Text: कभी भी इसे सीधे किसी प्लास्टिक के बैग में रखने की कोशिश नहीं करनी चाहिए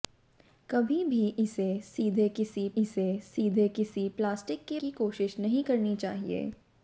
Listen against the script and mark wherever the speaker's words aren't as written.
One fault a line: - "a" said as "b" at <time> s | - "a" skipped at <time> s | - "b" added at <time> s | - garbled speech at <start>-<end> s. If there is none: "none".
- "प्लास्टिक के बैग में रखने" said as "इसे सीधे किसी प्लास्टिक के" at 2.8 s